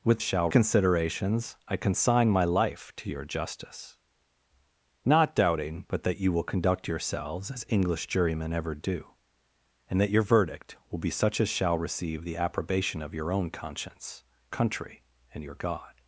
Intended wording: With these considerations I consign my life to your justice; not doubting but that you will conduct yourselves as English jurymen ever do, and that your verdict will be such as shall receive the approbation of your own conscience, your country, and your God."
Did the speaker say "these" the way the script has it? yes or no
no